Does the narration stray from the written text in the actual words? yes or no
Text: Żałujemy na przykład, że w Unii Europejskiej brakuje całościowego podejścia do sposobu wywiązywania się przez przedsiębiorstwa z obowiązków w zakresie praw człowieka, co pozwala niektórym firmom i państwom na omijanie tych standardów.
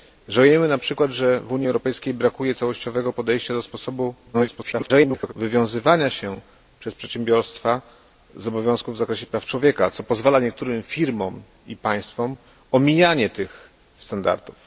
yes